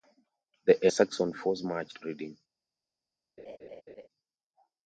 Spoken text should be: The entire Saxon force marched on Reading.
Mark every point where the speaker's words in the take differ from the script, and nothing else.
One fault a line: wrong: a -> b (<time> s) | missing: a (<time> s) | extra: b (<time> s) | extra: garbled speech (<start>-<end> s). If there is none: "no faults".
missing: entire (0.9 s)
missing: on (2.0 s)